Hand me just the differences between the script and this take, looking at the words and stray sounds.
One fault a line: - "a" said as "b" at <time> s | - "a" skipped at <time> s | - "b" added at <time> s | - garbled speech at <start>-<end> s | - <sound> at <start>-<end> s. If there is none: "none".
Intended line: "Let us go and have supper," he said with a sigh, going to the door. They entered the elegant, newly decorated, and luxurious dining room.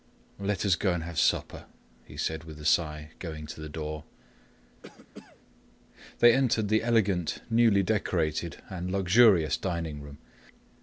- cough at 4.8-5.4 s